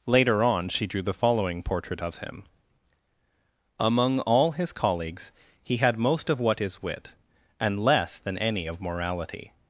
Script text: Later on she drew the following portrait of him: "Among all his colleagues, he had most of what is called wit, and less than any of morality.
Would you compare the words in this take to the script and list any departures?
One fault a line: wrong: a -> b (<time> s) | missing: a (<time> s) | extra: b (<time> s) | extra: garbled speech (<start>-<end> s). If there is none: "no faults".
missing: called (6.8 s)